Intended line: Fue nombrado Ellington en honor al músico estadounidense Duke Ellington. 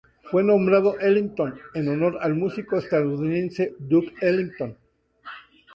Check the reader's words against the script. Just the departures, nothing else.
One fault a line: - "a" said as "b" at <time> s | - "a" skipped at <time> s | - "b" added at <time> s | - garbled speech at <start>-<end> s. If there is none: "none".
none